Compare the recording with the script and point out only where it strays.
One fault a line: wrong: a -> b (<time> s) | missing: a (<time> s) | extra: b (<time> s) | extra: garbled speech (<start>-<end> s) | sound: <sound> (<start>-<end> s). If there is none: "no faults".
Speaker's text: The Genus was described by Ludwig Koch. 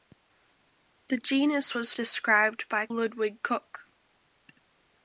no faults